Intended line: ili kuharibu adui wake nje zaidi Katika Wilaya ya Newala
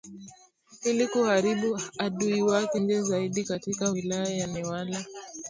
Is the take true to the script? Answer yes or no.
yes